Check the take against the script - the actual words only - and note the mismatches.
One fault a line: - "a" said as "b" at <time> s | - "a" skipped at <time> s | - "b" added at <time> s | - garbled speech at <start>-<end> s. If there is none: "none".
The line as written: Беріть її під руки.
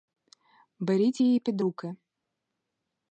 none